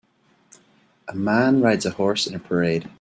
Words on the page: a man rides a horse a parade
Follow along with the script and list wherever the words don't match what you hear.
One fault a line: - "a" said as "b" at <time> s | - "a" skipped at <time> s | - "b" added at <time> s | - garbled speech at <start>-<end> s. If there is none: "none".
- "in" added at 2.2 s